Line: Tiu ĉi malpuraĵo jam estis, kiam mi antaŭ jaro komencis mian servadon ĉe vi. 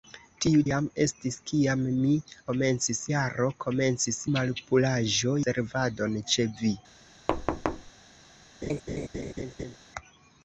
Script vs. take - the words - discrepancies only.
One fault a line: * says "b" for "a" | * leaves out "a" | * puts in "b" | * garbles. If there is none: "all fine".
* leaves out "ĉi malpuraĵo"
* says "komencis" for "antaŭ"
* says "malpuraĵo" for "mian"